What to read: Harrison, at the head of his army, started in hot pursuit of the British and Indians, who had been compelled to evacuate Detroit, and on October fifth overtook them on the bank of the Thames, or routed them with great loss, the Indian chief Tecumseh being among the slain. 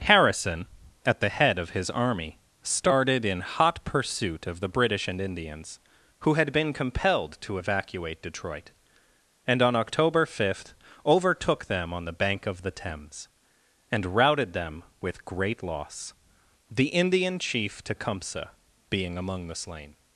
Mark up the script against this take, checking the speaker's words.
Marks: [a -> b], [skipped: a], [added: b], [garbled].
Harrison, at the head of his army, started in hot pursuit of the British and Indians, who had been compelled to evacuate Detroit, and on October fifth overtook them on the bank of the Thames, [or -> and] routed them with great loss, the Indian chief Tecumseh being among the slain.